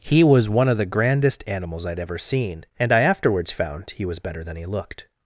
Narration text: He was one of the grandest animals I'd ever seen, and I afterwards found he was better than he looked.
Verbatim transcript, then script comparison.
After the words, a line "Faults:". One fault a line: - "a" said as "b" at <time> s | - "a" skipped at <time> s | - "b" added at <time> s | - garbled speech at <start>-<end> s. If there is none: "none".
He was one of the grandest animals I'd ever seen, and I afterwards found he was better than he looked.
Faults:
none